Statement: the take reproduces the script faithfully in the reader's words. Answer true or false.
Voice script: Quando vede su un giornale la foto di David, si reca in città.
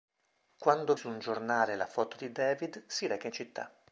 false